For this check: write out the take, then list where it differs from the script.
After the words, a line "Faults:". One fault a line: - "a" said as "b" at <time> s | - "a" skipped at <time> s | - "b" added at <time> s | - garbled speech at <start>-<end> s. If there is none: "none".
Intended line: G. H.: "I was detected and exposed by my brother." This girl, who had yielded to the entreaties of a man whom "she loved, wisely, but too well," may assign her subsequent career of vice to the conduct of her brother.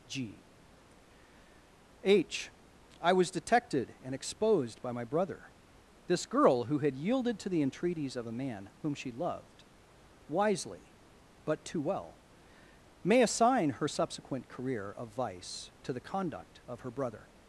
G. H.: "I was detected and exposed by my brother." This girl, who had yielded to the entreaties of a man whom "she loved, wisely, but too well," may assign her subsequent career of vice to the conduct of her brother.
Faults:
none